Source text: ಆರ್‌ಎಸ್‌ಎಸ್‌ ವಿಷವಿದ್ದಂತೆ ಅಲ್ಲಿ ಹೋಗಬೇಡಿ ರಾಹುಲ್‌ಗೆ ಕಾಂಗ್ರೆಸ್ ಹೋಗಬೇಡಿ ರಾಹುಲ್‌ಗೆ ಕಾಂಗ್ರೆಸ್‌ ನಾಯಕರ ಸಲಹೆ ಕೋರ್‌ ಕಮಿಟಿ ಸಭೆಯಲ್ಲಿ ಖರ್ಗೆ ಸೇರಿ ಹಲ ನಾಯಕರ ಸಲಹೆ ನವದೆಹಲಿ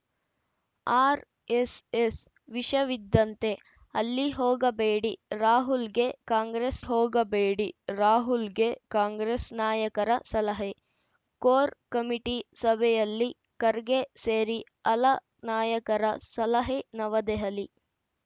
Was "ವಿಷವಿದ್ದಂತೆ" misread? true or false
false